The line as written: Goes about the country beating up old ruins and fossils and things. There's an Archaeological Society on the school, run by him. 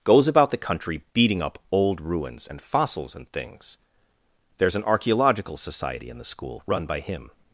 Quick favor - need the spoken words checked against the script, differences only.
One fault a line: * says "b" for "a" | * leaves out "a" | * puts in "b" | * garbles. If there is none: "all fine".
* says "in" for "on"